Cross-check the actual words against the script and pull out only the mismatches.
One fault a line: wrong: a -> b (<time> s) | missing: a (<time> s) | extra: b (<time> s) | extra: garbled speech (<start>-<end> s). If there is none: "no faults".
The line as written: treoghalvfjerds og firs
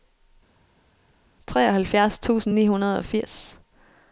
extra: tusind ni hundrede (2.2 s)